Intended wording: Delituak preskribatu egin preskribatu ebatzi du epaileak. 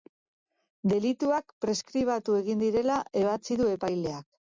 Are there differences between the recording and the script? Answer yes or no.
yes